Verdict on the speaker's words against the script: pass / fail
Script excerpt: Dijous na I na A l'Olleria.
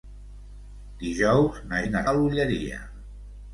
pass